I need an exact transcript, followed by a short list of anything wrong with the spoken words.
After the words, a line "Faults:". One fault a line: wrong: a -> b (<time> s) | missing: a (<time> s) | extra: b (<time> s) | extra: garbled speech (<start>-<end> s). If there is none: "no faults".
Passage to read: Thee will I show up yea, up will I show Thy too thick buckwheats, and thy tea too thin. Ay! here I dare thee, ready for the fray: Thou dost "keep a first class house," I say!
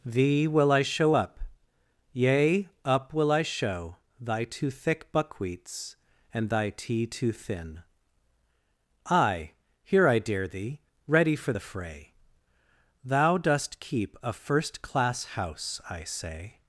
Thee will I show up yea, up will I show Thy too thick buckwheats, and thy tea too thin. Ay! here I dare thee, ready for the fray: Thou dost "keep a first class house," I say!
Faults:
no faults